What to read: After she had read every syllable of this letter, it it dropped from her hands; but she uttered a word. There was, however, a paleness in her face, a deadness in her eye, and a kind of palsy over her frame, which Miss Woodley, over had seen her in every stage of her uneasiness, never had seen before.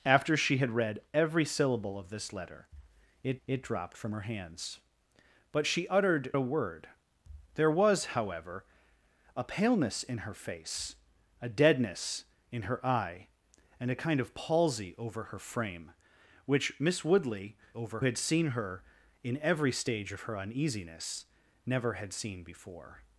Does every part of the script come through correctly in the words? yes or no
yes